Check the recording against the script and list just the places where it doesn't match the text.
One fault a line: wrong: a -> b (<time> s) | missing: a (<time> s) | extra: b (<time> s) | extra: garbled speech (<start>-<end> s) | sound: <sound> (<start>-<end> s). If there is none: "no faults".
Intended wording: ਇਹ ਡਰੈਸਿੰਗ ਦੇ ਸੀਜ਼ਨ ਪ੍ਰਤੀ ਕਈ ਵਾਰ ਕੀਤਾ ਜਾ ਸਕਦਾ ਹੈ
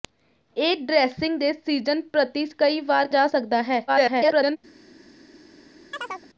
missing: ਕੀਤਾ (3.1 s)
extra: garbled speech (3.9-4.6 s)
sound: chirp (5.9-6.3 s)